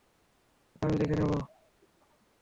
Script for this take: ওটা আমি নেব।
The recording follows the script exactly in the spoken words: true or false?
false